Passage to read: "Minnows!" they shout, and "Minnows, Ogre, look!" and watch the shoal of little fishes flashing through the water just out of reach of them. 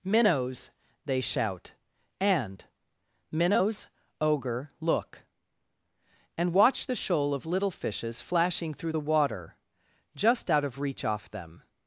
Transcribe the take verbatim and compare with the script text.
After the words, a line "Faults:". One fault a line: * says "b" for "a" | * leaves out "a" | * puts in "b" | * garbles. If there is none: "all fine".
"Minnows!" they shout, and "Minnows, Ogre, look!" and watch the shoal of little fishes flashing through the water just out of reach off them.
Faults:
* says "off" for "of"